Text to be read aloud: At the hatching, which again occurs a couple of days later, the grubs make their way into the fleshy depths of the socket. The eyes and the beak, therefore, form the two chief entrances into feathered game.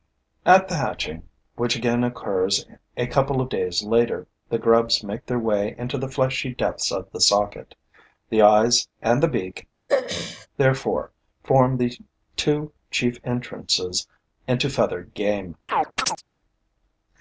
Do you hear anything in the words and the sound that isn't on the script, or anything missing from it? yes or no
yes